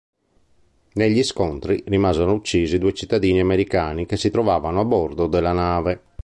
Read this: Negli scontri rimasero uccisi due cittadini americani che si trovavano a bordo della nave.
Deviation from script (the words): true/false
false